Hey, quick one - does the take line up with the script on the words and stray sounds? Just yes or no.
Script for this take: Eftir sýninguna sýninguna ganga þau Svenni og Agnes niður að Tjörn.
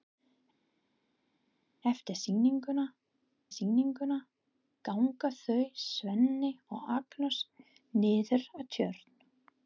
yes